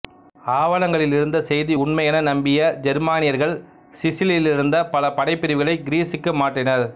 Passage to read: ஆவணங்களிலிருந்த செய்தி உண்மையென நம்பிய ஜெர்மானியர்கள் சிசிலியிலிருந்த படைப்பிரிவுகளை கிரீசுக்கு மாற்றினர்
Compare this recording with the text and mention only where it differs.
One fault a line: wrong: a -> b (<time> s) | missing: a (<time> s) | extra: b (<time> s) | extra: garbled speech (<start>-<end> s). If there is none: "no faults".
extra: பல (4.9 s)